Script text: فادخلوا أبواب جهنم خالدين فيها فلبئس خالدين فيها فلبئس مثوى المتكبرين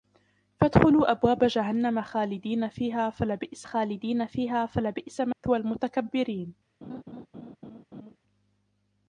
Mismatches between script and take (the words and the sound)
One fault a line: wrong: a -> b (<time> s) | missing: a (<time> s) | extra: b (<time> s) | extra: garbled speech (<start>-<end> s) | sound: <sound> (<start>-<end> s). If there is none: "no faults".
sound: dropout (5.3-5.4 s)
sound: laugh (6.8-8.2 s)